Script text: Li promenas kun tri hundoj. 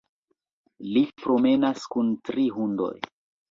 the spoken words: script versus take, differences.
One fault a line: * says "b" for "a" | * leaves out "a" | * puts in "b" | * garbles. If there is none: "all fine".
all fine